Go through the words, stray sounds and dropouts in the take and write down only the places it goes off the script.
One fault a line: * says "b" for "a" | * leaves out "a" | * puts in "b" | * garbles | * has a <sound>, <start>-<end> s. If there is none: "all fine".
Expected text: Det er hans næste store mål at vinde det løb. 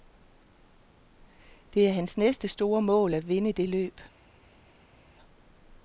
all fine